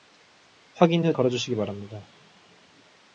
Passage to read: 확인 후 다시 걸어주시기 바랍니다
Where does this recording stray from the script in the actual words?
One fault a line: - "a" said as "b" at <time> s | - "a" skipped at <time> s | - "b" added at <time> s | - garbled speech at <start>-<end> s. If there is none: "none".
- "다시" skipped at 1.1 s